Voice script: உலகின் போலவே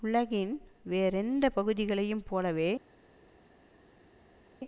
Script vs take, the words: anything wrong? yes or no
yes